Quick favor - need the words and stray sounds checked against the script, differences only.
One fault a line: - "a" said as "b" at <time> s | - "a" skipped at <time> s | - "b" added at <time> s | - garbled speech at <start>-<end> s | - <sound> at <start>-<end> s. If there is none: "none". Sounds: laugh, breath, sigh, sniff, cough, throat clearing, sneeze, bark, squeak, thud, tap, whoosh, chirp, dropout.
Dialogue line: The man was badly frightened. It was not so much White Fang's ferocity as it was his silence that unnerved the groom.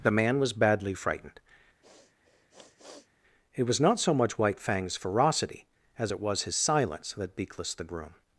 - sniff at 1.8-3.1 s
- "unnerved" said as "beakless" at 7.4 s